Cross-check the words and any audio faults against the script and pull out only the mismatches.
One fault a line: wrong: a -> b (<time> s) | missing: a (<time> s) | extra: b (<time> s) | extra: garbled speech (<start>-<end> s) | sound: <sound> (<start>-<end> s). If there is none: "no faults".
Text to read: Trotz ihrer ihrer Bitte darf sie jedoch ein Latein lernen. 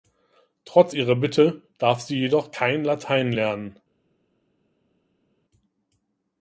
missing: ihrer (1.1 s)
wrong: ein -> kein (2.5 s)